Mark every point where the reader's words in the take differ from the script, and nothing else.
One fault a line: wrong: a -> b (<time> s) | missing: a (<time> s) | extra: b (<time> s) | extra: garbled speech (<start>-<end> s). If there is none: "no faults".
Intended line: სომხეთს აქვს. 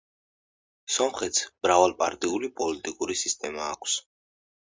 extra: მრავალპარტიული პოლიტიკური სისტემა (1.6 s)